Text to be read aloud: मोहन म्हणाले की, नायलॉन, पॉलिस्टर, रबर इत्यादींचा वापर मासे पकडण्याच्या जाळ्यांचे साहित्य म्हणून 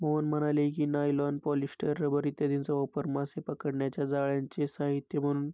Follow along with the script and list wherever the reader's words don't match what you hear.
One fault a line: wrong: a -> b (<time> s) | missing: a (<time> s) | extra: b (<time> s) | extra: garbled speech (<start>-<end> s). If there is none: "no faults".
no faults